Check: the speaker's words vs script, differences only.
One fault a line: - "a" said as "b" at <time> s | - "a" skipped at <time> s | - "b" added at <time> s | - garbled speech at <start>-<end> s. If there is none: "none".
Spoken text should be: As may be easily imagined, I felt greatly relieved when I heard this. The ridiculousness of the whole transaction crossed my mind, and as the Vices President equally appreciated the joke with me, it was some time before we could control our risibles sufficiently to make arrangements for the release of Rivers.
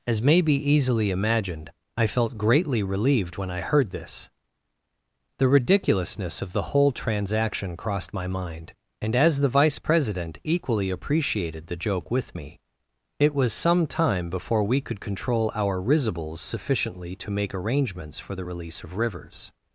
- "Vices" said as "Vice" at 9.5 s